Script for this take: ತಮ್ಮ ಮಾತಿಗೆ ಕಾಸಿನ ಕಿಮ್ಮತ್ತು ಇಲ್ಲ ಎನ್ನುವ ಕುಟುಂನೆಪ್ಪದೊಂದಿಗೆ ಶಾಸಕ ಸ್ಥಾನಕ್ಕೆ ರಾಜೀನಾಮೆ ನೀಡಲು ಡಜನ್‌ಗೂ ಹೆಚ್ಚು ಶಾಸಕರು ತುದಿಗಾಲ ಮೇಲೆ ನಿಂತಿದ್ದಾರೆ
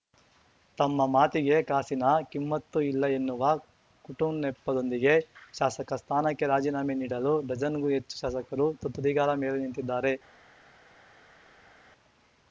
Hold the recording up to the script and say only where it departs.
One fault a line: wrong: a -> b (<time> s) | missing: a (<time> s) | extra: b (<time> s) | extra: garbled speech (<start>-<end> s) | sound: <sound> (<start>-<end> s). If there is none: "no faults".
no faults